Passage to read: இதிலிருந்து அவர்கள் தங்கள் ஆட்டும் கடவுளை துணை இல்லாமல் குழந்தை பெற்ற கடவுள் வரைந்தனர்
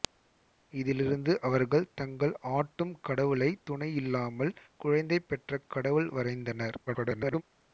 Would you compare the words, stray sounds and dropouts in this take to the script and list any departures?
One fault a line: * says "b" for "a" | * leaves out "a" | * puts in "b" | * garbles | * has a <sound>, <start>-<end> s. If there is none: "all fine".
* garbles